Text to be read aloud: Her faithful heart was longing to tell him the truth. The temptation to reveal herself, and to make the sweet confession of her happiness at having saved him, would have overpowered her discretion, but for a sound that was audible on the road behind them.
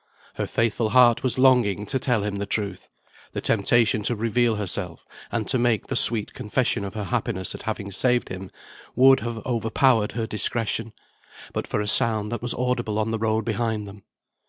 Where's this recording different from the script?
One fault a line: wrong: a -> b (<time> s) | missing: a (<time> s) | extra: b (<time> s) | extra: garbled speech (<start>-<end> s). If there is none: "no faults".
no faults